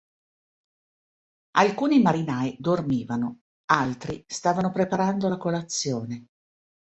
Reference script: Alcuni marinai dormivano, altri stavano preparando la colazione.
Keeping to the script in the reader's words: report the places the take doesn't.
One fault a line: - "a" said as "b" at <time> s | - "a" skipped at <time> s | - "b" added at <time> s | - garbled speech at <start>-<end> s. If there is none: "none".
none